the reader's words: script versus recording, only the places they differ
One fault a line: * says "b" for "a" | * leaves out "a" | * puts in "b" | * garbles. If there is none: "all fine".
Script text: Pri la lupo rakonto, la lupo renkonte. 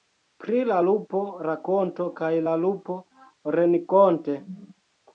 * puts in "kaj"